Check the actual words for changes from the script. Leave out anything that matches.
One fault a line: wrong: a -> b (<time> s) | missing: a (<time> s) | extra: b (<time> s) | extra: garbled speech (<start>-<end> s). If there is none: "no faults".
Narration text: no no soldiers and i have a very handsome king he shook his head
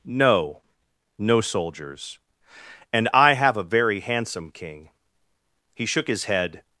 no faults